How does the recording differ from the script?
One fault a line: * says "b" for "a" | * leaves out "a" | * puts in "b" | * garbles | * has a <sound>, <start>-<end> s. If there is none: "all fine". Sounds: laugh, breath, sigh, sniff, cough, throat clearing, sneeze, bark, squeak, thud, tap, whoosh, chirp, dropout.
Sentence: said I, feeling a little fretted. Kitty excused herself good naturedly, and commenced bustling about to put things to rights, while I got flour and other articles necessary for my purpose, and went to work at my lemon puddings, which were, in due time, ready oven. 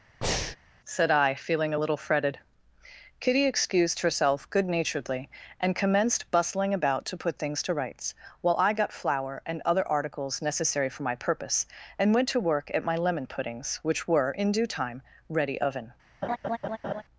* has a breath, 0.2-0.6 s
* has a laugh, 16.2-17.0 s